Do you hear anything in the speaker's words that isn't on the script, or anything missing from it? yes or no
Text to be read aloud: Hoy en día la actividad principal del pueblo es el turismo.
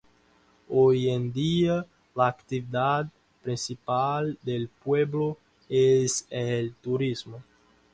no